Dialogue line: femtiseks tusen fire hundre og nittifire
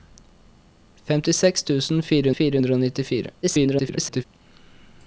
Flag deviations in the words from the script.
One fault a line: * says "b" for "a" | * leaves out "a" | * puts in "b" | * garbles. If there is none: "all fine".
* puts in "fire"
* garbles